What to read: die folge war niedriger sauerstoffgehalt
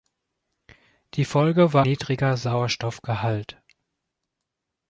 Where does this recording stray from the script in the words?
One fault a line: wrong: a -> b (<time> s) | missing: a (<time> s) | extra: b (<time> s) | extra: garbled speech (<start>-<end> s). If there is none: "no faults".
no faults